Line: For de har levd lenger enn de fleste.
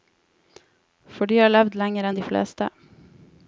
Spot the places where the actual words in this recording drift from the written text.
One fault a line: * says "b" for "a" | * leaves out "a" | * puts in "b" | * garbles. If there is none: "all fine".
all fine